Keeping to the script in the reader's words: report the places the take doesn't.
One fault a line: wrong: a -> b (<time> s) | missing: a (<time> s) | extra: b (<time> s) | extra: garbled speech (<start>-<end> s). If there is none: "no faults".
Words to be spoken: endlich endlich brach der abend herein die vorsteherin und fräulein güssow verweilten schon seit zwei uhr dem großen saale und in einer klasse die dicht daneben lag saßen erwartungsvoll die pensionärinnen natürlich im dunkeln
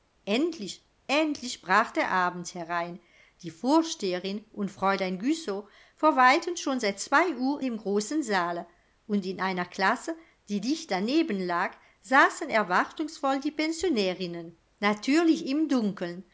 no faults